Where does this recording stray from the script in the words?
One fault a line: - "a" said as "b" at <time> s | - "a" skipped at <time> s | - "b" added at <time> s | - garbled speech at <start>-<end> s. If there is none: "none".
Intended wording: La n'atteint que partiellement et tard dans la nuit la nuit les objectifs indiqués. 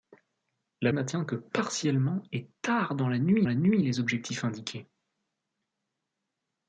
none